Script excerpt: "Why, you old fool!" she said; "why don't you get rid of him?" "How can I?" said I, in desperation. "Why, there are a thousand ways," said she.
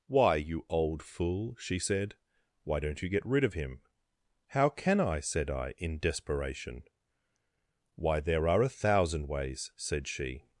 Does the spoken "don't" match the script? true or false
true